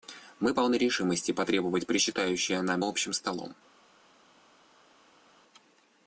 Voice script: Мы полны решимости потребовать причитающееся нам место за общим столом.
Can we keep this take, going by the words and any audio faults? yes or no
no